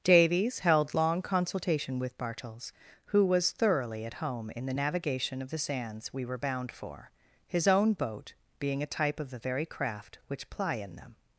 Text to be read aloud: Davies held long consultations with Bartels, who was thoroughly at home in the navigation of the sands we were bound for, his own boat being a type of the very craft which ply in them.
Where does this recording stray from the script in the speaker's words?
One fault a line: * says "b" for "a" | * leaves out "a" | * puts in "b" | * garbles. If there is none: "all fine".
* says "consultation" for "consultations"